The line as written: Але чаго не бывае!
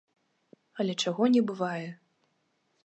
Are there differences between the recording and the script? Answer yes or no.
no